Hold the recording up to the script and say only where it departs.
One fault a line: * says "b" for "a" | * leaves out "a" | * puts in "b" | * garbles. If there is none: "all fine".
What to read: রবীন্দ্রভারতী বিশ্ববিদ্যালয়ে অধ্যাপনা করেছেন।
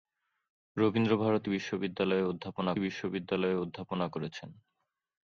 * puts in "বিশ্ববিদ্যালয়ে অধ্যাপনা"